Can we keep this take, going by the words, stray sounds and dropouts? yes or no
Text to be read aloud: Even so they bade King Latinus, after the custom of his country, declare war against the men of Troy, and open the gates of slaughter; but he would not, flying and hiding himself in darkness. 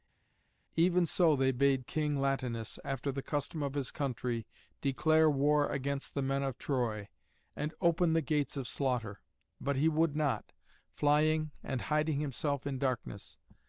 yes